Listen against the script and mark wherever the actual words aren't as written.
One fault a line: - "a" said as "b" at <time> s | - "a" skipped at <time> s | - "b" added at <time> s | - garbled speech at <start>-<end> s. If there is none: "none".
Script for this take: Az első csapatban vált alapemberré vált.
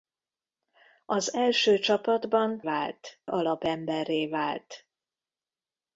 none